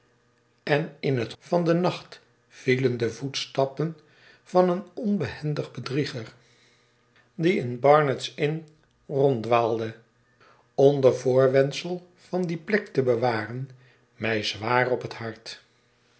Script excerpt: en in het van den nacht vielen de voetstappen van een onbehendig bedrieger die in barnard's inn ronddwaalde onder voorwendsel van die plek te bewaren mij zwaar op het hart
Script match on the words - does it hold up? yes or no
yes